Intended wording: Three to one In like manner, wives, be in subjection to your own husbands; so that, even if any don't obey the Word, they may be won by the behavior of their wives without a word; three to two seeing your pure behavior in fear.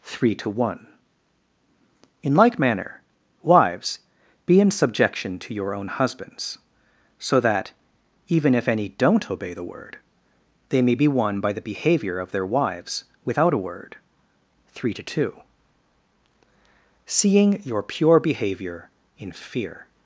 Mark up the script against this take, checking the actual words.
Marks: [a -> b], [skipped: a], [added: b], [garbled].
Three to one In like manner, wives, be in subjection to your own husbands; so that, even if any don't obey the Word, they may be won by the behavior of their wives without a word; three to two seeing your pure behavior in fear.